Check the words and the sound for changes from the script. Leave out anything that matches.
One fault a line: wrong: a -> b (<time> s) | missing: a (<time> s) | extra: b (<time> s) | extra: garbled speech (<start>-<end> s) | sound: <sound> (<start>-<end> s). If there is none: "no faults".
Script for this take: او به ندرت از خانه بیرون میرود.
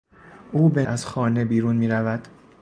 missing: ندرت (0.8 s)